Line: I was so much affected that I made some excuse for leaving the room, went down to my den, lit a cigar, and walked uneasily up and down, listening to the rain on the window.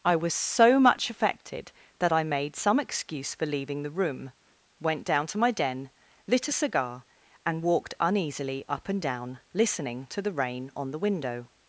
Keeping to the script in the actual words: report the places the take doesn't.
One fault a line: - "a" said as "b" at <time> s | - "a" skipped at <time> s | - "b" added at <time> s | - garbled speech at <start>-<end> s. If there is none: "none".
none